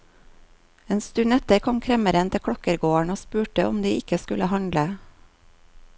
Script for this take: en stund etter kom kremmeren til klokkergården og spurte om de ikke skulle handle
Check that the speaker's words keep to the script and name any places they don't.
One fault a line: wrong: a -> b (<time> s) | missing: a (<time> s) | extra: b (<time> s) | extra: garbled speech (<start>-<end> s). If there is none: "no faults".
no faults